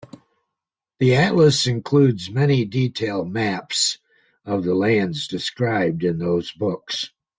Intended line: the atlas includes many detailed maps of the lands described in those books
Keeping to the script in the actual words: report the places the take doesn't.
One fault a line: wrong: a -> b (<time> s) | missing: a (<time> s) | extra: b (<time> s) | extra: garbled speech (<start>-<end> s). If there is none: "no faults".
no faults